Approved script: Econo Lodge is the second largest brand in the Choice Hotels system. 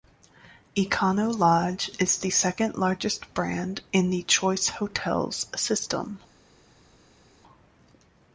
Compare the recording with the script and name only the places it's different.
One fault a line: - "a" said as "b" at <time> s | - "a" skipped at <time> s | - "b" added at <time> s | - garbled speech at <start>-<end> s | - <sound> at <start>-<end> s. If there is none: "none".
none